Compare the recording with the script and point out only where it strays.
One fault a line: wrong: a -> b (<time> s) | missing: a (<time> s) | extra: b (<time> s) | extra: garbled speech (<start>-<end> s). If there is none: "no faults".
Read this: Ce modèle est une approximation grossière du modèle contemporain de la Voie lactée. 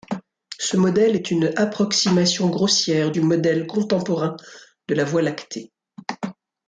no faults